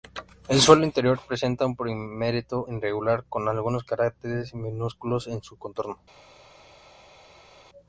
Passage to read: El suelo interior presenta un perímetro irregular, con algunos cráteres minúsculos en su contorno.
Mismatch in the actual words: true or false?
false